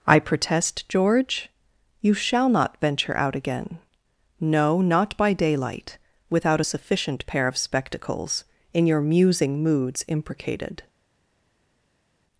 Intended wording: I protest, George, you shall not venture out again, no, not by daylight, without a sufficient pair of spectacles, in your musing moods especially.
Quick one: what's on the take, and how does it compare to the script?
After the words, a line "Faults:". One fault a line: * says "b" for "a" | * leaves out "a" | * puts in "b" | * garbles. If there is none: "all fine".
I protest, George, you shall not venture out again, no, not by daylight, without a sufficient pair of spectacles, in your musing moods imprecated.
Faults:
* says "imprecated" for "especially"